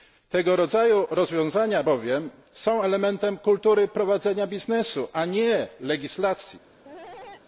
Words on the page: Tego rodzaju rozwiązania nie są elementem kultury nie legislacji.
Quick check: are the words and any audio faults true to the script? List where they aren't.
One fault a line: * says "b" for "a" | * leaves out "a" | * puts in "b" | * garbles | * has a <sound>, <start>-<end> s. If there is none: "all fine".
* says "bowiem" for "nie"
* puts in "prowadzenia biznesu a"
* has a cough, 6.8-7.4 s